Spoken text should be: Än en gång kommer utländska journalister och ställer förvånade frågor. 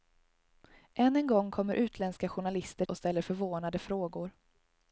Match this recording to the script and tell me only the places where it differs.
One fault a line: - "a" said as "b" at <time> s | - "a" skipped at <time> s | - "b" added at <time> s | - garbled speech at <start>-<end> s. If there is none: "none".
none